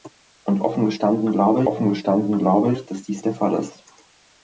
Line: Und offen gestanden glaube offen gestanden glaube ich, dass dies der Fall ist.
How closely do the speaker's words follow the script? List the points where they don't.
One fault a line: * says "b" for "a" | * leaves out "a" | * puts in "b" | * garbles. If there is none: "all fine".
all fine